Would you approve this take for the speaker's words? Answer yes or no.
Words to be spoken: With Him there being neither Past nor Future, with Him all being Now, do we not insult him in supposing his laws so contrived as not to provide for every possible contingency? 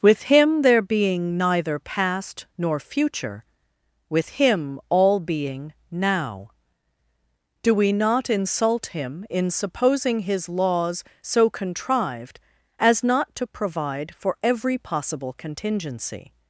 yes